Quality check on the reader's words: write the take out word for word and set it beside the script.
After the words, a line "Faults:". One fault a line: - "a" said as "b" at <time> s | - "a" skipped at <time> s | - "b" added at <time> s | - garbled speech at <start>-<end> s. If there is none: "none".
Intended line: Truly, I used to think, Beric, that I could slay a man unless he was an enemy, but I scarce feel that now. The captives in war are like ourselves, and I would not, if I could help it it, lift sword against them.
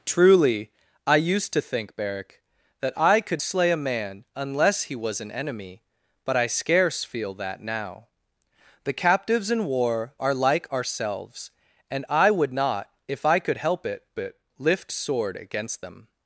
Truly, I used to think, Beric, that I could slay a man unless he was an enemy, but I scarce feel that now. The captives in war are like ourselves, and I would not, if I could help it it, lift sword against them.
Faults:
none